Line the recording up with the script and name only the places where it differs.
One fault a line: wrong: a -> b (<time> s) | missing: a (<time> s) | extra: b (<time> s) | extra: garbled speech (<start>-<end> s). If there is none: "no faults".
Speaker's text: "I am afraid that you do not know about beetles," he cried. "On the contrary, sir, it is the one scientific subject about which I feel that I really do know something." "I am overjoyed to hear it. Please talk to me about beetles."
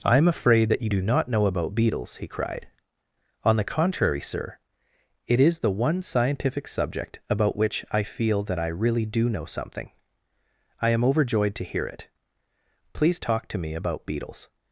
no faults